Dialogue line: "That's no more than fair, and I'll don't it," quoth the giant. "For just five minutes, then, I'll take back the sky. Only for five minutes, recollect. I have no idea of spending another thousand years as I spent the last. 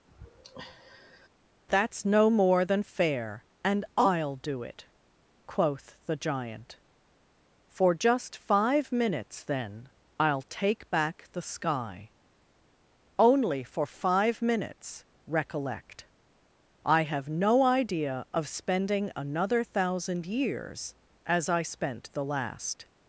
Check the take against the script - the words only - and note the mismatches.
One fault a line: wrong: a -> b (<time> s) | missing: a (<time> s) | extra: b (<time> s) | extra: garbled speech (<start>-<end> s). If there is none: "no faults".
wrong: don't -> do (4.3 s)